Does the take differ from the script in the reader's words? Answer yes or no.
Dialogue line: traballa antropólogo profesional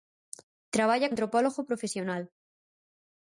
no